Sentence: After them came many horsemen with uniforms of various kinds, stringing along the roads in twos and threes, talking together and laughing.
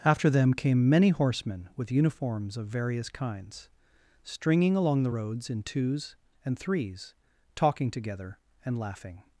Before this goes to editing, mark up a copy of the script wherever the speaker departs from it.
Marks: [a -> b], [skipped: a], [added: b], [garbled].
After them came many horsemen with uniforms of various kinds, stringing along the roads in twos and threes, talking together and laughing.